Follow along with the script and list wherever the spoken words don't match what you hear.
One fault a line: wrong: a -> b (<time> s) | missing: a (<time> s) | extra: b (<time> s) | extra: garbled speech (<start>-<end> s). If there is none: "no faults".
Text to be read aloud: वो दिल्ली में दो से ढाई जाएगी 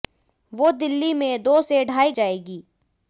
no faults